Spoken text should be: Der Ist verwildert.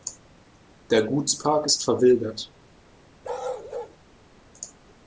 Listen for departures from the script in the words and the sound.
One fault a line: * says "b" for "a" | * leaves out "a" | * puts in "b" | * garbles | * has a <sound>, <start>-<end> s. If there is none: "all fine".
* puts in "Gutspark"
* has a bark, 3.2-4.0 s